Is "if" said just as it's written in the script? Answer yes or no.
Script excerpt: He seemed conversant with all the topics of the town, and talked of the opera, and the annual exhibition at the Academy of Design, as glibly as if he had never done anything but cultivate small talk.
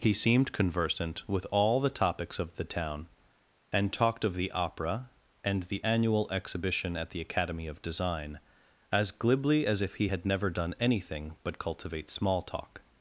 yes